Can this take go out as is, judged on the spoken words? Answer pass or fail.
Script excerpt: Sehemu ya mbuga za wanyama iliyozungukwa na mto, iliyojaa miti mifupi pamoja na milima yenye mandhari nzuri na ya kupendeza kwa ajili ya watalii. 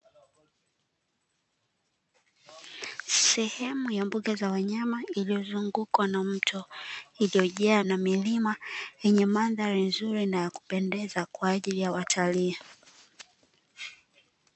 fail